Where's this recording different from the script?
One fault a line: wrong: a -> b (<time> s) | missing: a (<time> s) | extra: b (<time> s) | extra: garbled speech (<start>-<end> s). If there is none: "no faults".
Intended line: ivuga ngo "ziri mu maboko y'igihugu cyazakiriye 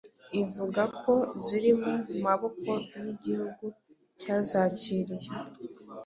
wrong: ngo -> ko (1.0 s)